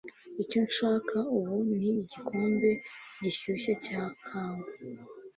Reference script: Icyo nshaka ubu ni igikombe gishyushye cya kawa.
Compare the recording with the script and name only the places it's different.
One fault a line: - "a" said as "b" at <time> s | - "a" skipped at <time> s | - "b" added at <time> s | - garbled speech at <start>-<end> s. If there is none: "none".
none